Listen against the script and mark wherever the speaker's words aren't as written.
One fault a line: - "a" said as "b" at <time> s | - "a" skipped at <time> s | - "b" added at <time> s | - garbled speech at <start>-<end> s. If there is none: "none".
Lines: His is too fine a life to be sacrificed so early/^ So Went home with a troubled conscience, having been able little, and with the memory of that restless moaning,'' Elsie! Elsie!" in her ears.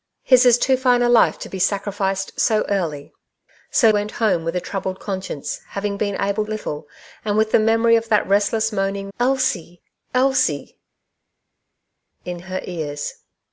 none